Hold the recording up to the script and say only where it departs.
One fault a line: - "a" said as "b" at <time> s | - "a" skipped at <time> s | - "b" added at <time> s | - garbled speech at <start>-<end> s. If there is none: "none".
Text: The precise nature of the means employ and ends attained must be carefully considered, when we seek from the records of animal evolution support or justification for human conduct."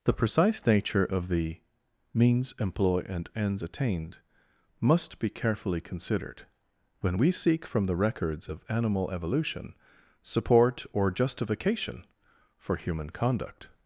none